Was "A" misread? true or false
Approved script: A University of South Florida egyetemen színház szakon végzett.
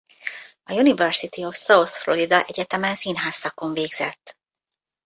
false